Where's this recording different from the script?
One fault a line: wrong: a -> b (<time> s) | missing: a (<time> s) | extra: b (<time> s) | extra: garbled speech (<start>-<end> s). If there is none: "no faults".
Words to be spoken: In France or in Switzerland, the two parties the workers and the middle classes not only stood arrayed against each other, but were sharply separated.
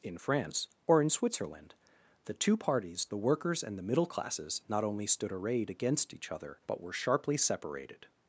no faults